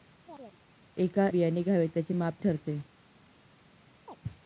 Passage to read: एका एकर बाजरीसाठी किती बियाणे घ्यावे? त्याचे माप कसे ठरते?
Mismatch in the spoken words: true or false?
true